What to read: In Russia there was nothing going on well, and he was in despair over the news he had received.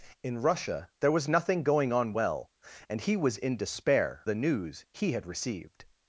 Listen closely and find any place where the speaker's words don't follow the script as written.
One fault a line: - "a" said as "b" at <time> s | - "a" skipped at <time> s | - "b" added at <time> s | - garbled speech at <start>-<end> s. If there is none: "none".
- "over" skipped at 4.3 s